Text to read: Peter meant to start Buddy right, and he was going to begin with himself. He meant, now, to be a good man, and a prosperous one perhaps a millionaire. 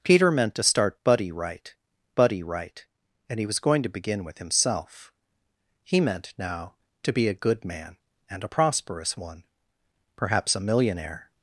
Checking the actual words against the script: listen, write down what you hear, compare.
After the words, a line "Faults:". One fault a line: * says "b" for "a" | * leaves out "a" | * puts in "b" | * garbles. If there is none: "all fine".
Peter meant to start Buddy right Buddy right, and he was going to begin with himself. He meant, now, to be a good man, and a prosperous one perhaps a millionaire.
Faults:
* puts in "Buddy right"